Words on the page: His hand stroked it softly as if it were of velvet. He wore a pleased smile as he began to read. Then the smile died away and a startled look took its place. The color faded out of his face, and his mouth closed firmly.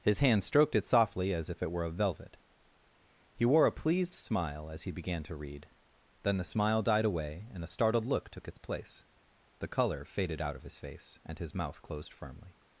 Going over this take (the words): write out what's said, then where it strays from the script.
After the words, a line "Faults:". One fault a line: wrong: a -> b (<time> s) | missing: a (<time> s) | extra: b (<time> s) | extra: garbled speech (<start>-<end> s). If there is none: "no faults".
His hand stroked it softly as if it were of velvet. He wore a pleased smile as he began to read. Then the smile died away and a startled look took its place. The color faded out of his face, and his mouth closed firmly.
Faults:
no faults